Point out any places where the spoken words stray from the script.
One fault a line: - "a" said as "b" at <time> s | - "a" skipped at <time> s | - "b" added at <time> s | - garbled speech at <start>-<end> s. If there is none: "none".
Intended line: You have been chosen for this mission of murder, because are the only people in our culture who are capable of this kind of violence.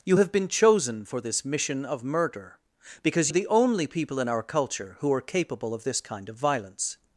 none